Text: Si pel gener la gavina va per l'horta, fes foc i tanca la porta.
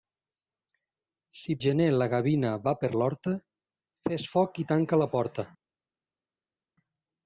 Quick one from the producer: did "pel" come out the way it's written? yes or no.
no